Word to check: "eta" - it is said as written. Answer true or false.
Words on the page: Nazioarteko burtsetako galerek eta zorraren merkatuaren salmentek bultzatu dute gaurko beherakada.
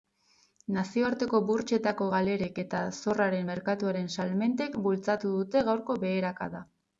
true